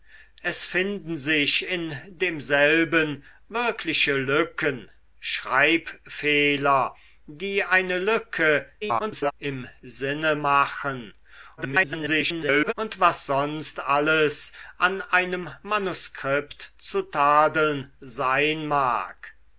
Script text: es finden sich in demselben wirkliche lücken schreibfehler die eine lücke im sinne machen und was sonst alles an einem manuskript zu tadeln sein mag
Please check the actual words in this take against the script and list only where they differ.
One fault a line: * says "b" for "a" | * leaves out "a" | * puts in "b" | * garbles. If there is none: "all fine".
* garbles
* garbles